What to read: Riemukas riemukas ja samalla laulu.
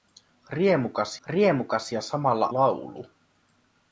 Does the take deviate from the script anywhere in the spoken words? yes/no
no